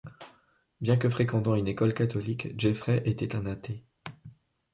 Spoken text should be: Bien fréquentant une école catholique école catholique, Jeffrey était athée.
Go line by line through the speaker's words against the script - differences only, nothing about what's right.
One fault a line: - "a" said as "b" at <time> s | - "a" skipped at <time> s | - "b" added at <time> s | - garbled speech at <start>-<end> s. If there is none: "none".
- "que" added at 1.0 s
- "école catholique" skipped at 2.6 s
- "un" added at 3.4 s